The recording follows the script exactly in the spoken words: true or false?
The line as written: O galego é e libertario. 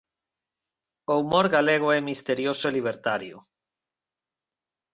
false